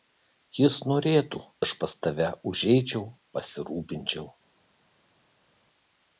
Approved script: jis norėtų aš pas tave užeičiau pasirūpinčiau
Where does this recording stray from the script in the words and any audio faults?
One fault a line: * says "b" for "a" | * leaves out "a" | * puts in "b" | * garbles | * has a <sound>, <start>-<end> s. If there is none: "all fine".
all fine